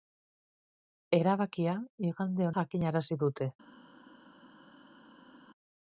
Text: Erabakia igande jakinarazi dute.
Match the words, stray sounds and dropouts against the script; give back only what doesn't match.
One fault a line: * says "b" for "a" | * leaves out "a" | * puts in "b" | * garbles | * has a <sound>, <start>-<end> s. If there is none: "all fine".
all fine